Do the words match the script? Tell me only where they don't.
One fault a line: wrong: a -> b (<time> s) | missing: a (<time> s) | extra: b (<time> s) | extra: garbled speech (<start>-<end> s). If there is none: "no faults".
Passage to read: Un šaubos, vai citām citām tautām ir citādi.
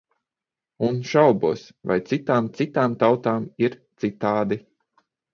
no faults